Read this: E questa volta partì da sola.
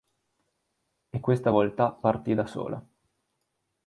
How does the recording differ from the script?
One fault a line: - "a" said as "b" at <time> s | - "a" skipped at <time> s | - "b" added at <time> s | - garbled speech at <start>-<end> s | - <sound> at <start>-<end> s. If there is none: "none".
none